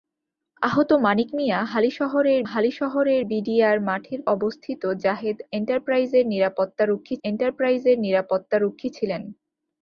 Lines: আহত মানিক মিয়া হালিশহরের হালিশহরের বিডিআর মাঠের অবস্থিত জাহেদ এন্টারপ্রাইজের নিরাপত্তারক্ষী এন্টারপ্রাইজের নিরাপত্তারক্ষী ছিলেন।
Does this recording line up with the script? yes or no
yes